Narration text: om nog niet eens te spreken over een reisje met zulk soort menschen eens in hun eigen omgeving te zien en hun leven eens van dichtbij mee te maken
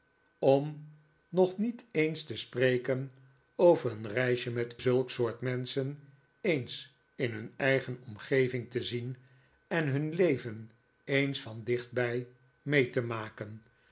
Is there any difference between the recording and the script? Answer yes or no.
no